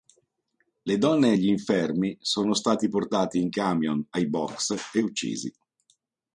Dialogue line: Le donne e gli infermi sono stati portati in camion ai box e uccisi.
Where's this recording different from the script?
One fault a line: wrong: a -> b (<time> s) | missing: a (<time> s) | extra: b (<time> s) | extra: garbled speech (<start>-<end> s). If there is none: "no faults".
no faults